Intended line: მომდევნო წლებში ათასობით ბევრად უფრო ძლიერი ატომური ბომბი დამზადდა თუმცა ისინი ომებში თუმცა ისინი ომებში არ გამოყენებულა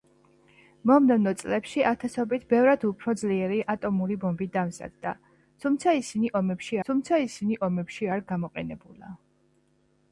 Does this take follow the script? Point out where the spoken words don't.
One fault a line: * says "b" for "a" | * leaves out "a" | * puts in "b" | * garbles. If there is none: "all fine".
all fine